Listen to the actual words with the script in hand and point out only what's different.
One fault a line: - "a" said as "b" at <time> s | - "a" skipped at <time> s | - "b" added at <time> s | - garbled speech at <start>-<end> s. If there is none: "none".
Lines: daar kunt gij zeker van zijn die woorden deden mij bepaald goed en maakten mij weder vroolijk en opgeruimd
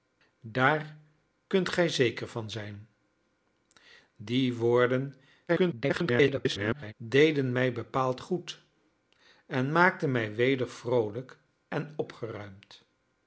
- garbled speech at 5.5-6.9 s